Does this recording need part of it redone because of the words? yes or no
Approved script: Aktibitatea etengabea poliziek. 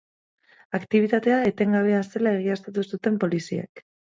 yes